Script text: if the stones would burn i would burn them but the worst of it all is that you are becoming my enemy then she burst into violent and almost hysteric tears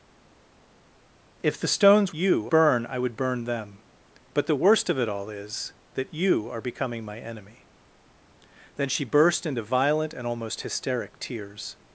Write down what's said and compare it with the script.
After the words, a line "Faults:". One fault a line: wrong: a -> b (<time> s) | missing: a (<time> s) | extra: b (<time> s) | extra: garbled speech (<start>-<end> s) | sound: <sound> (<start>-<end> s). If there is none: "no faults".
if the stones you burn i would burn them but the worst of it all is that you are becoming my enemy then she burst into violent and almost hysteric tears
Faults:
wrong: would -> you (2.1 s)